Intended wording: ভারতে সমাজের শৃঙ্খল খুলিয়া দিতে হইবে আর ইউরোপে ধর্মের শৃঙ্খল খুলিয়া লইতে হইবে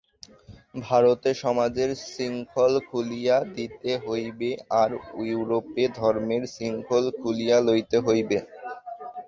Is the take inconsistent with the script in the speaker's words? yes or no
no